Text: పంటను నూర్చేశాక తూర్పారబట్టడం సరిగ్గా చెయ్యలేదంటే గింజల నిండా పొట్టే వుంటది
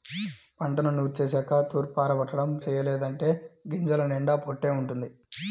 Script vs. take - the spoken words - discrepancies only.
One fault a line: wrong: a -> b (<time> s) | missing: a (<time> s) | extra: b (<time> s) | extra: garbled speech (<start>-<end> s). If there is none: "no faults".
missing: సరిగ్గా (2.5 s)